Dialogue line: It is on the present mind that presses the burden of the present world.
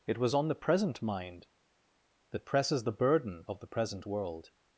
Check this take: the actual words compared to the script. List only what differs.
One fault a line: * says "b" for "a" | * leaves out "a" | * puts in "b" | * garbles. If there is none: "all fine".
* says "was" for "is"